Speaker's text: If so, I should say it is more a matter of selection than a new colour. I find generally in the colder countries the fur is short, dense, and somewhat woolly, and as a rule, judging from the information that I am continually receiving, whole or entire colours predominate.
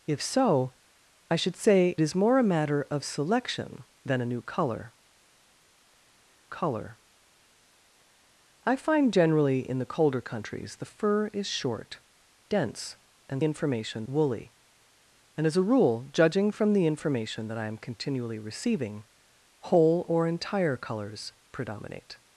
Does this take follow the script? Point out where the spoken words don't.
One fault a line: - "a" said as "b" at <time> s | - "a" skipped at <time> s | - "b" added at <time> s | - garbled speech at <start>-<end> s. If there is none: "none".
- "it" skipped at 1.9 s
- "colour" added at 6.5 s
- "somewhat" said as "information" at 13.4 s